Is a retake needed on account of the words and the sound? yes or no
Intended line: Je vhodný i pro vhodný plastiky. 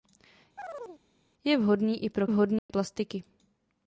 yes